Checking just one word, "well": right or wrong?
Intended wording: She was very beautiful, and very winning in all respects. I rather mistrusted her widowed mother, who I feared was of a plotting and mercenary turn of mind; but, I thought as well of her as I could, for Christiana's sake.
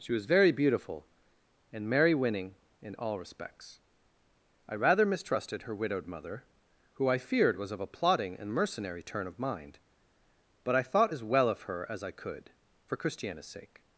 right